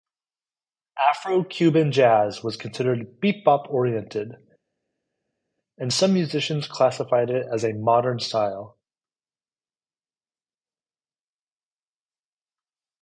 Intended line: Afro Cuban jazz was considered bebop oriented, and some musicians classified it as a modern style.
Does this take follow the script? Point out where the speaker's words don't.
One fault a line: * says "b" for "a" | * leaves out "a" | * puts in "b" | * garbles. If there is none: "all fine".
all fine